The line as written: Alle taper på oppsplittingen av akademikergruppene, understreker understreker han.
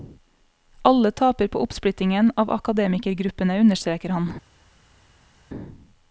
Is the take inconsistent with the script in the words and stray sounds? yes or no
yes